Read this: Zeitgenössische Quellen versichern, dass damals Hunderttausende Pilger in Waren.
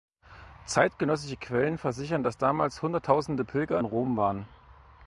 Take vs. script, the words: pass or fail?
fail